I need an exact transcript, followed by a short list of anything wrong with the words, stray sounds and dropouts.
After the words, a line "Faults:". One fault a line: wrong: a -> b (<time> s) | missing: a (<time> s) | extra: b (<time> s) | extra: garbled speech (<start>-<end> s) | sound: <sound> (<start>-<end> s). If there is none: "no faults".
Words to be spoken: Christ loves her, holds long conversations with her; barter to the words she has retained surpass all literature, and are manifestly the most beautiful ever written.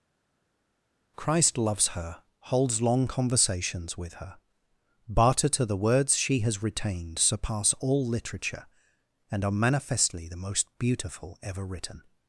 Christ loves her, holds long conversations with her; barter to the words she has retained surpass all literature, and are manifestly the most beautiful ever written.
Faults:
no faults